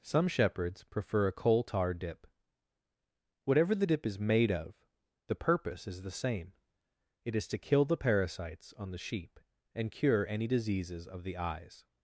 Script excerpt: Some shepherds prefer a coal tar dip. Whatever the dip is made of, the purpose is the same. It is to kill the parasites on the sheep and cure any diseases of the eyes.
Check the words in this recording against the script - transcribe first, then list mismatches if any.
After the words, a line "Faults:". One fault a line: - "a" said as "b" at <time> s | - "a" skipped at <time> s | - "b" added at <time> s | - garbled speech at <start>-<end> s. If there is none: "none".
Some shepherds prefer a coal tar dip. Whatever the dip is made of, the purpose is the same. It is to kill the parasites on the sheep and cure any diseases of the eyes.
Faults:
none